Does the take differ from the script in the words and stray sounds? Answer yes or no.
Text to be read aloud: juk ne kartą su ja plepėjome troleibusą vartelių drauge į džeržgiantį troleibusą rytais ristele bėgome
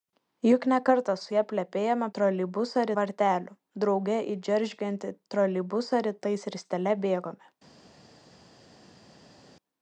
no